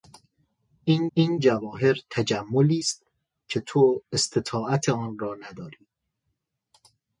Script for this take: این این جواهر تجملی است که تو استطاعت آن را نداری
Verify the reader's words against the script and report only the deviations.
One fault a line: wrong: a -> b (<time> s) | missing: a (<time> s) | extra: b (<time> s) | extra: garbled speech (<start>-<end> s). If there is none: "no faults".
no faults